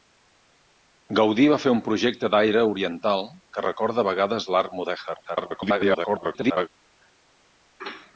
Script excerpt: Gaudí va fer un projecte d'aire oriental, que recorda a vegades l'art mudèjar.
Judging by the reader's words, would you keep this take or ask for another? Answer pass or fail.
fail